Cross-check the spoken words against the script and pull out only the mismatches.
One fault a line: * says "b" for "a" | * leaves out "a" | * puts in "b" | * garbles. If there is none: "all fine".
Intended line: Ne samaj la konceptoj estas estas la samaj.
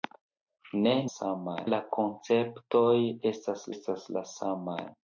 all fine